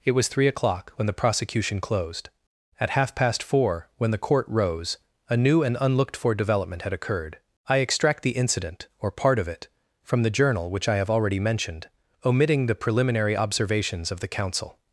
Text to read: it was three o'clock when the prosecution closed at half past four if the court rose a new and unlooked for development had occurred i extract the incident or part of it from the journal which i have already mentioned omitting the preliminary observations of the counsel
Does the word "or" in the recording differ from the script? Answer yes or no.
no